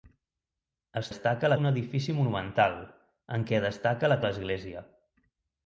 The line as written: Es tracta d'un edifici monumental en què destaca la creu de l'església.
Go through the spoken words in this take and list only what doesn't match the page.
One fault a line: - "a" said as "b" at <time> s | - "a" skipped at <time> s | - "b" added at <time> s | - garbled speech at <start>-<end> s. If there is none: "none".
- "tracta" said as "destaca" at 1.1 s
- "creu" skipped at 4.2 s